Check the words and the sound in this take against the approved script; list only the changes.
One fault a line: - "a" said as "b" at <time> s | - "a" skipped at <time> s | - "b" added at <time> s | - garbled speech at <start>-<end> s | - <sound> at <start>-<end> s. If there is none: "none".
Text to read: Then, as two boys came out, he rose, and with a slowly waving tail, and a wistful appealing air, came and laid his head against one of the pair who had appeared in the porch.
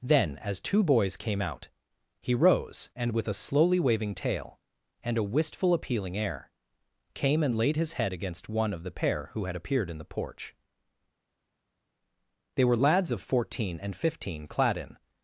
- "They were lads of fourteen and fifteen clad in" added at 12.5 s